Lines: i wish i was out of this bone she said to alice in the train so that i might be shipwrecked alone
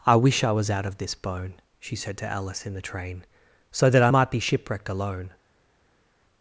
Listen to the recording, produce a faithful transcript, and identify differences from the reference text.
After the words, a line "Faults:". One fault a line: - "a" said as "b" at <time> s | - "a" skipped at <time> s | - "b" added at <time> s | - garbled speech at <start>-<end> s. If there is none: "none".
i wish i was out of this bone she said to alice in the train so that i might be shipwrecked alone
Faults:
none